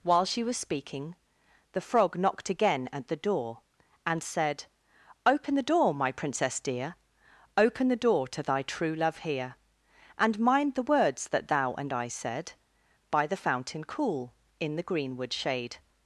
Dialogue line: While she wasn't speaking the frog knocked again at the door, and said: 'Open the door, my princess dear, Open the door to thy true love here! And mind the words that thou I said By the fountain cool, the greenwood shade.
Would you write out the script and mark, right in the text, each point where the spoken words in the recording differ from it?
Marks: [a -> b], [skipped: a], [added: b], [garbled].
While she [wasn't -> was] speaking the frog knocked again at the door, and said: 'Open the door, my princess dear, Open the door to thy true love here! And mind the words that thou [added: and] I said By the fountain cool, [added: in] the greenwood shade.